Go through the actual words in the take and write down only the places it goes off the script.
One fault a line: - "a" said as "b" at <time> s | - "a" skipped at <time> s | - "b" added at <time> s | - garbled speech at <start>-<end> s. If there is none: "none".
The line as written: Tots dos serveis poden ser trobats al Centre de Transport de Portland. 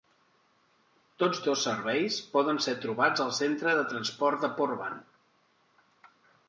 none